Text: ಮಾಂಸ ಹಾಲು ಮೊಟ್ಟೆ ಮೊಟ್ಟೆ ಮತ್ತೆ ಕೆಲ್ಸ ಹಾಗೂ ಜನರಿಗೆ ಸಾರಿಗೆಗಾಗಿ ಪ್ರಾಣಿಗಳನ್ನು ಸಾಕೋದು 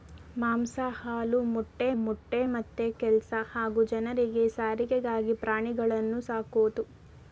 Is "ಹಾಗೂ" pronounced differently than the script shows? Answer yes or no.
no